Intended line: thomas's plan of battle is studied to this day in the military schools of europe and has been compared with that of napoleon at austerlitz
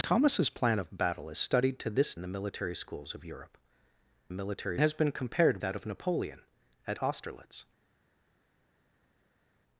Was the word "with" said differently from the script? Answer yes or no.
yes